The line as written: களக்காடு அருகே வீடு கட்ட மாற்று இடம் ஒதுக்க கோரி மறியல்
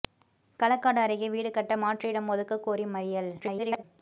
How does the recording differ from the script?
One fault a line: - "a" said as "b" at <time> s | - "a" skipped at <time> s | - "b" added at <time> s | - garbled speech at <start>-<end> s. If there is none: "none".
- garbled speech at 3.4-3.8 s